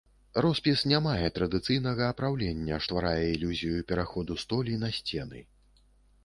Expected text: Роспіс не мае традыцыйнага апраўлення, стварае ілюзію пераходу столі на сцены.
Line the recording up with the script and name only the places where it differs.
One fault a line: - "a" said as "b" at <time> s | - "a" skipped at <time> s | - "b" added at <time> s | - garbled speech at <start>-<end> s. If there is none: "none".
none